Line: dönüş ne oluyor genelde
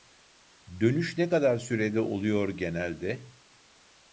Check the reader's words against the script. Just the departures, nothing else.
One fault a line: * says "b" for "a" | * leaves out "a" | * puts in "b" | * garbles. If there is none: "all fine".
* puts in "kadar sürede"